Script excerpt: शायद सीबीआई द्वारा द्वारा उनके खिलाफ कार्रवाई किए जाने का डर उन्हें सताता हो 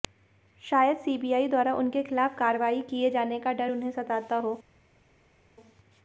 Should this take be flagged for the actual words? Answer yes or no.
yes